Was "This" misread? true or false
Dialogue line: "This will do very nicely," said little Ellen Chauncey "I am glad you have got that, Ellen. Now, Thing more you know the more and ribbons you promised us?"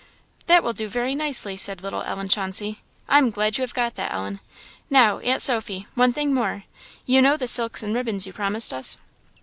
true